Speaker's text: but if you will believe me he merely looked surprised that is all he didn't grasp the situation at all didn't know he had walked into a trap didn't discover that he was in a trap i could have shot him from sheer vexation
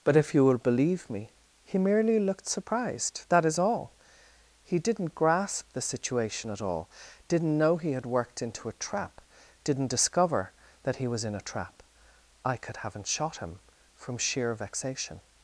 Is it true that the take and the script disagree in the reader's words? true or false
true